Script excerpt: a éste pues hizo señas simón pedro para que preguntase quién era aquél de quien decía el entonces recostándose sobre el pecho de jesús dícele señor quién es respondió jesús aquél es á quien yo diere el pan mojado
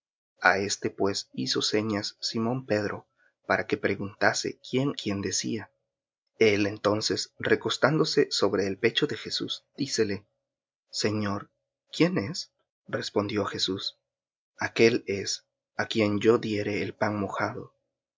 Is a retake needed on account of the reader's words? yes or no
yes